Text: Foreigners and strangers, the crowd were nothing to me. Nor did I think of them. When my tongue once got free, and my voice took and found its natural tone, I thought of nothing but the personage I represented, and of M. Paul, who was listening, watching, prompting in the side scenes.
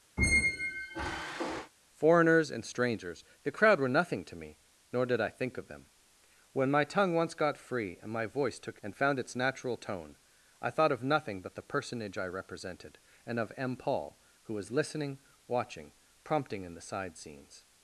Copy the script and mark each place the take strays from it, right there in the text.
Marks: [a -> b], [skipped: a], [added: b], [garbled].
Foreigners and strangers, the crowd were nothing to me. Nor did I think of them. When my tongue once got free, and my voice took and found its natural tone, I thought of nothing but the personage I represented, and of M. Paul, who was listening, watching, prompting in the side scenes.